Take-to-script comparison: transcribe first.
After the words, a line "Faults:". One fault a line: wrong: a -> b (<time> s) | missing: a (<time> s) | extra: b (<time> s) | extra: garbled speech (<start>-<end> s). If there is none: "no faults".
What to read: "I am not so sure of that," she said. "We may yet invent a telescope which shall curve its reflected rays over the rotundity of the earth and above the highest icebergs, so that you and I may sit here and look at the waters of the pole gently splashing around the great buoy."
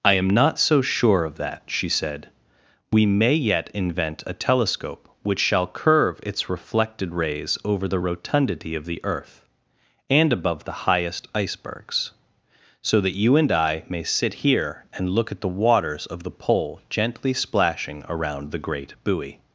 "I am not so sure of that," she said. "We may yet invent a telescope which shall curve its reflected rays over the rotundity of the earth and above the highest icebergs, so that you and I may sit here and look at the waters of the pole gently splashing around the great buoy."
Faults:
no faults